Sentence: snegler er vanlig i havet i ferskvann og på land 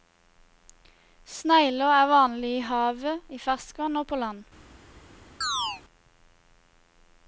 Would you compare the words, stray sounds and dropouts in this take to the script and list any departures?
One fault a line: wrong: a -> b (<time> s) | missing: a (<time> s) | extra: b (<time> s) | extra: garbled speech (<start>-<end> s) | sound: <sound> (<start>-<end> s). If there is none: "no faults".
sound: chirp (5.4-5.8 s)